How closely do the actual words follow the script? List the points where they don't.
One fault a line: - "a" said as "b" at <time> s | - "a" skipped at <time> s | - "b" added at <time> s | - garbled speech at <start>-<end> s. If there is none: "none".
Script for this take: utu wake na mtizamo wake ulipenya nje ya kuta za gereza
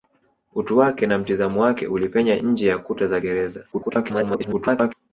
- garbled speech at 3.7-4.9 s